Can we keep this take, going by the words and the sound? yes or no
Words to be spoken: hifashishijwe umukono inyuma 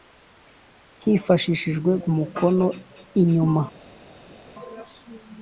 yes